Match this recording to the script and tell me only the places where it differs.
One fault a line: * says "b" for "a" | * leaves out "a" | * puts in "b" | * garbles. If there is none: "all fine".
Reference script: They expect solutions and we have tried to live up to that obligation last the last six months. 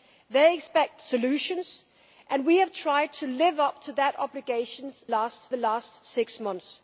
all fine